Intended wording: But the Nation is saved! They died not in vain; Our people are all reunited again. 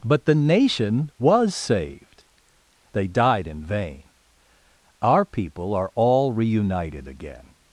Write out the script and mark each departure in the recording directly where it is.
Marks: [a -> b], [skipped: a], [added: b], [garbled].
But the Nation [is -> was] saved! They died [skipped: not] in vain; Our people are all reunited again.